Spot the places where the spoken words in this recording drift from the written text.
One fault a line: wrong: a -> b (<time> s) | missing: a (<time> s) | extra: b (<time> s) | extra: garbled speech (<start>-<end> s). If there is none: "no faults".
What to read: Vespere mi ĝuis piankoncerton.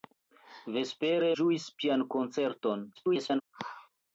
missing: mi (1.3 s)
extra: garbled speech (3.0-3.4 s)